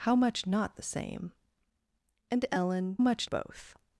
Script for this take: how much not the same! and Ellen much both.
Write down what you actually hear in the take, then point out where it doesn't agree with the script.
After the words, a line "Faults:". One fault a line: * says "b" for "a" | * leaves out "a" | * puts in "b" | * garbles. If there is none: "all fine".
how much not the same! and Ellen much both.
Faults:
all fine